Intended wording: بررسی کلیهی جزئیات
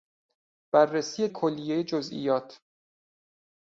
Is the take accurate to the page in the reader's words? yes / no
yes